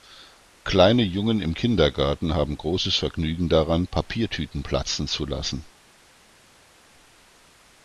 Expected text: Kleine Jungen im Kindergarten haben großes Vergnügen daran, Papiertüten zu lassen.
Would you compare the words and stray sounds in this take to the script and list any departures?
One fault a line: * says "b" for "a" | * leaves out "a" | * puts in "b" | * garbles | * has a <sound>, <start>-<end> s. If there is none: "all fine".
* puts in "platzen"